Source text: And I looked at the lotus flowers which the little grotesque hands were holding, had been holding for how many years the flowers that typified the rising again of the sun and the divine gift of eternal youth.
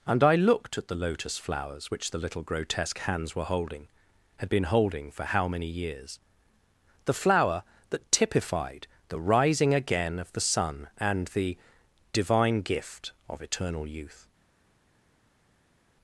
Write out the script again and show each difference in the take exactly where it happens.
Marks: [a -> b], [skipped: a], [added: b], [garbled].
And I looked at the lotus flowers which the little grotesque hands were holding, had been holding for how many years the [flowers -> flower] that typified the rising again of the sun and the divine gift of eternal youth.